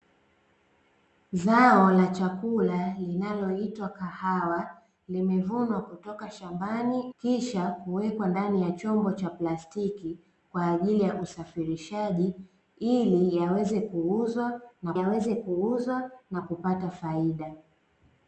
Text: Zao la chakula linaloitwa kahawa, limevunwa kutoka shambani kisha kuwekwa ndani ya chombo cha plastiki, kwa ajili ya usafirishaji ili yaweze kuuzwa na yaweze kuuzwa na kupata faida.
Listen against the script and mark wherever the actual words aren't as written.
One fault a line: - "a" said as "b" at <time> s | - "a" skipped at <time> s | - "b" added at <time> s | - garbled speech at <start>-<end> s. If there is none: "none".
none